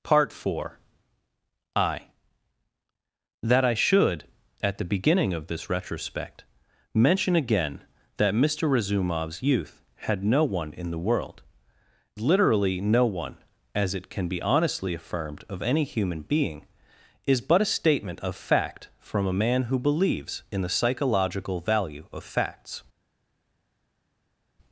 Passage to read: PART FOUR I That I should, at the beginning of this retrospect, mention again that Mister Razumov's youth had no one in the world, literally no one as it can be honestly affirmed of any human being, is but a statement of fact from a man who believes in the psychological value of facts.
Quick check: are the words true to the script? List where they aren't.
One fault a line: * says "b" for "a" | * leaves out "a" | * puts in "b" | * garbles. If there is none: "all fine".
all fine